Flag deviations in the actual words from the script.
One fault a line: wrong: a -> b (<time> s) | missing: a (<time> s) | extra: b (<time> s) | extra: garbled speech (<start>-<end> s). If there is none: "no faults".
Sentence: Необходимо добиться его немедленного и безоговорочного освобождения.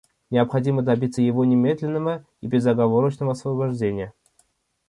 no faults